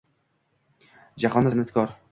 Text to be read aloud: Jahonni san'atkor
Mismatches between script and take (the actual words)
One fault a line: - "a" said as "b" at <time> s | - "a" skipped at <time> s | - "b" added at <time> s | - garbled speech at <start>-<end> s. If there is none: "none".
none